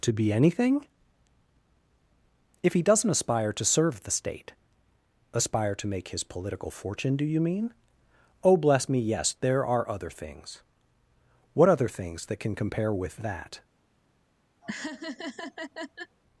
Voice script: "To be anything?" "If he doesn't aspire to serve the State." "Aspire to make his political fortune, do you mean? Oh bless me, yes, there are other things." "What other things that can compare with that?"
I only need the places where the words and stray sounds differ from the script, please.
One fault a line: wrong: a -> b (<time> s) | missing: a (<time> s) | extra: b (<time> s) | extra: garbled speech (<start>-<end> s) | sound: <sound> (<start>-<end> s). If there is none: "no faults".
sound: laugh (14.6-16.2 s)